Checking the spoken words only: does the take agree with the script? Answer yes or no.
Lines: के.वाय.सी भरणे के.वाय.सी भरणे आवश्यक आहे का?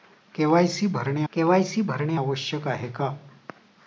yes